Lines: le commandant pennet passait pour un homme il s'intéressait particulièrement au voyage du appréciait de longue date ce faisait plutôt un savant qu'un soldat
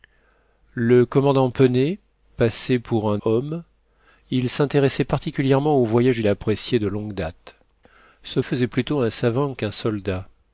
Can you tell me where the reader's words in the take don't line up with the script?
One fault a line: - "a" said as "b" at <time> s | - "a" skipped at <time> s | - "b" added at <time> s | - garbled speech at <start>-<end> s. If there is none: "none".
none